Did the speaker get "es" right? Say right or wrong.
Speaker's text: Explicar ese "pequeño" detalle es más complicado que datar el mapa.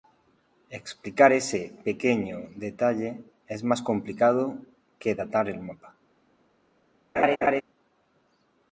right